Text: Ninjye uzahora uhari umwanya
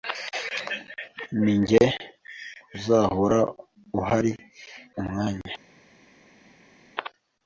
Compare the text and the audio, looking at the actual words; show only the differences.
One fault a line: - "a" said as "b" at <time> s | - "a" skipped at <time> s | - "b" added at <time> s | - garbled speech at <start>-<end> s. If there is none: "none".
none